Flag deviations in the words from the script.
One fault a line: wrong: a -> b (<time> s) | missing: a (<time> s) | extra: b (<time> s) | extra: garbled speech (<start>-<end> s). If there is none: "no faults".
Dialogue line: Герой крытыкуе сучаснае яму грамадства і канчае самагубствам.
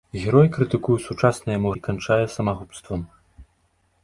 missing: грамадства (1.7 s)